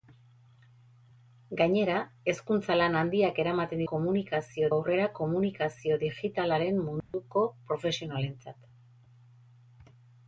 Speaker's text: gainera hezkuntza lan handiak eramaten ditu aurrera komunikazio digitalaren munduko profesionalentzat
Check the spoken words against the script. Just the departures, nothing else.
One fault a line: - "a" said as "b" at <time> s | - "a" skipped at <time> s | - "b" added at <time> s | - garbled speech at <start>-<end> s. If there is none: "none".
- "ditu" said as "komunikazio" at 3.9 s